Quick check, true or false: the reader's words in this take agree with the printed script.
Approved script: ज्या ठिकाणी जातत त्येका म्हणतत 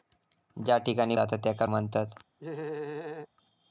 true